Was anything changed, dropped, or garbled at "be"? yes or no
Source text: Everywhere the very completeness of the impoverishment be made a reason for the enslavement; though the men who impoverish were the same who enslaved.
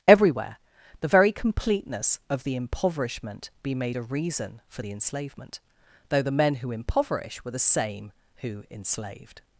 no